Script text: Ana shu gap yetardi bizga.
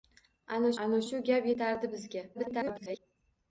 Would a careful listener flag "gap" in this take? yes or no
no